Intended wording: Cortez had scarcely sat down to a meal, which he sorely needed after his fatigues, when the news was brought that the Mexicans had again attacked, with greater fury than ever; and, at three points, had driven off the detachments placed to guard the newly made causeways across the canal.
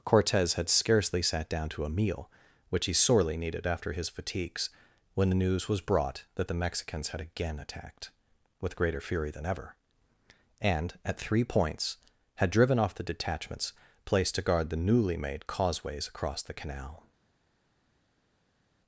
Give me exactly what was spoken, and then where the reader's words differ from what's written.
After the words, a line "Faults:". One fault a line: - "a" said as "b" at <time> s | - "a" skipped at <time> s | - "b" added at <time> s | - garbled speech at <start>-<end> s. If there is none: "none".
Cortez had scarcely sat down to a meal, which he sorely needed after his fatigues, when the news was brought that the Mexicans had again attacked, with greater fury than ever; and, at three points, had driven off the detachments placed to guard the newly made causeways across the canal.
Faults:
none